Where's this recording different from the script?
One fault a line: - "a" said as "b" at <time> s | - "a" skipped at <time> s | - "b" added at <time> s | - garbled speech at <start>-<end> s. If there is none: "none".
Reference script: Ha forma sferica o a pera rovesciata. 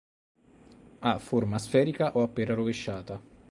none